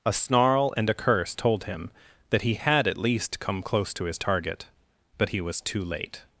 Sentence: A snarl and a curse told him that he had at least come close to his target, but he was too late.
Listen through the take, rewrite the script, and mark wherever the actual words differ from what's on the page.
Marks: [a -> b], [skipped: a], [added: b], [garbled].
A snarl and a curse told him that he had at least come close to his target, but he was too late.